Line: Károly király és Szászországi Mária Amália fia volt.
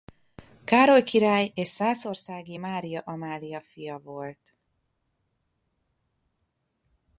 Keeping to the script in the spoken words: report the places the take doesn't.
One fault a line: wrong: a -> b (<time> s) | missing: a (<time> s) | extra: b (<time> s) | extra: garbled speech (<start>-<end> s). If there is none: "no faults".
no faults